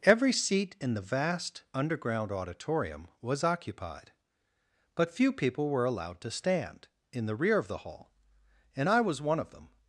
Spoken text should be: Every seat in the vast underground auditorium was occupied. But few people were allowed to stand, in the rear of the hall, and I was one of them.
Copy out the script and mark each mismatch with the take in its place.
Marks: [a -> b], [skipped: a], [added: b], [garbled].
Every seat in the vast underground auditorium was occupied. But few people were allowed to stand, in the rear of the hall, and I was one of them.